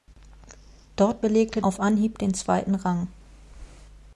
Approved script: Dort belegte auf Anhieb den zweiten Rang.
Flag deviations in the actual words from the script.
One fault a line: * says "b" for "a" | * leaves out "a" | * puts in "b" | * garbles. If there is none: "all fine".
all fine